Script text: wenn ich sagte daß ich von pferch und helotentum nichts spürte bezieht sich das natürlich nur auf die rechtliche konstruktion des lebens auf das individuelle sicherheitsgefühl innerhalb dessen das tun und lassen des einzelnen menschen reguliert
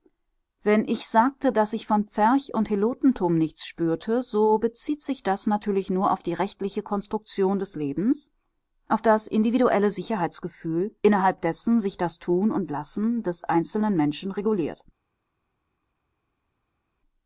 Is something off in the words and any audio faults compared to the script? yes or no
yes